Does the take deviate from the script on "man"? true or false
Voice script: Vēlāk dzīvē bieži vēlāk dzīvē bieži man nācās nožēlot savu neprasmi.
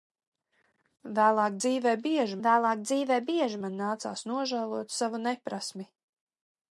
false